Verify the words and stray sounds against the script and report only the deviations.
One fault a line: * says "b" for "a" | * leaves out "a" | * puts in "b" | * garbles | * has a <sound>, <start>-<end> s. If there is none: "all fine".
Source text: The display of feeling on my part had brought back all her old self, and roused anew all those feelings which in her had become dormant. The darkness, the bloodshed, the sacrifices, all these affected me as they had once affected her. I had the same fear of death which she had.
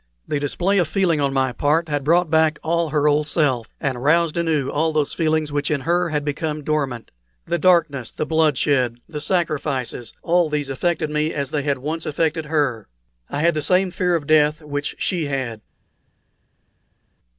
all fine